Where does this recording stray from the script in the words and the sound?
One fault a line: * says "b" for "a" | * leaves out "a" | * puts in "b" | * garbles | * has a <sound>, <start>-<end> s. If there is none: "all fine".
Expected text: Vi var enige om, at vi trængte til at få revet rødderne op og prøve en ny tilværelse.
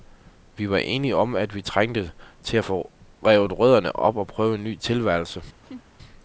* has a laugh, 5.6-5.8 s